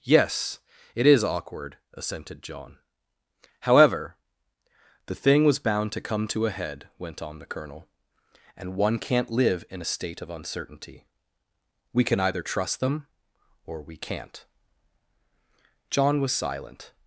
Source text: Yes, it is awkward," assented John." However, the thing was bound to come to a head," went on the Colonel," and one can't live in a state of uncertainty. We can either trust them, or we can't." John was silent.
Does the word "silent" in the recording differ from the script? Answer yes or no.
no